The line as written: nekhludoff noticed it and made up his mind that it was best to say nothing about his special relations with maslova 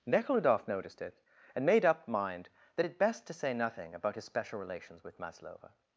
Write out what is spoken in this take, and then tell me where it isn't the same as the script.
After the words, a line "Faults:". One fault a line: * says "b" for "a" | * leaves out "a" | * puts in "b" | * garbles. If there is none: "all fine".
nekhludoff noticed it and made up mind that it best to say nothing about his special relations with maslova
Faults:
* leaves out "his"
* leaves out "was"